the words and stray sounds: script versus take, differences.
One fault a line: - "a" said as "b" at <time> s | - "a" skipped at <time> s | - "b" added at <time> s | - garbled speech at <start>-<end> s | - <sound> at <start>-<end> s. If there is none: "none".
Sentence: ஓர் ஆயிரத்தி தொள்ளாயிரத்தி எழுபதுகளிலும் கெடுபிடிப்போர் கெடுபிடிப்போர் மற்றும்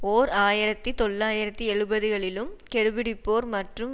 - "கெடுபிடிப்போர்" skipped at 3.5 s